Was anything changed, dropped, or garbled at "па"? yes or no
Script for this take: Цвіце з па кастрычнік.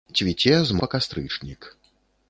no